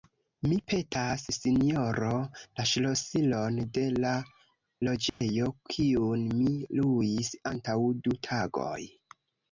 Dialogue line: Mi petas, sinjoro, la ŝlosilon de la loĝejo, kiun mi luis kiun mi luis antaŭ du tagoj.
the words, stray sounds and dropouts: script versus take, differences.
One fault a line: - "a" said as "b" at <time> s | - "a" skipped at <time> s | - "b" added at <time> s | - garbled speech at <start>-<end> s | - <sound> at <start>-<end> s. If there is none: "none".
- dropout at 5.1-5.2 s
- "kiun mi luis" skipped at 7.3 s